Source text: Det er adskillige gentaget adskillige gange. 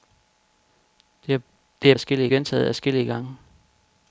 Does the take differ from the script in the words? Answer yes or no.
no